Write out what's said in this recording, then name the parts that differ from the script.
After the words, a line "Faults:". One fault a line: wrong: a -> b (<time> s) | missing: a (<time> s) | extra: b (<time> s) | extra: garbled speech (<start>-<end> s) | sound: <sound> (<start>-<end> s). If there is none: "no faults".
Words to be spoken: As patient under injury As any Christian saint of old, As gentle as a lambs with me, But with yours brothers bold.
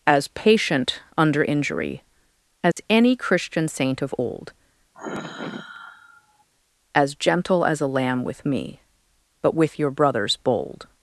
As patient under injury As any Christian saint of old, As gentle as a lamb with me, But with your brothers bold.
Faults:
sound: dropout (2.7-2.8 s)
sound: sigh (4.9-6.4 s)
wrong: lambs -> lamb (7.9 s)
wrong: yours -> your (9.8 s)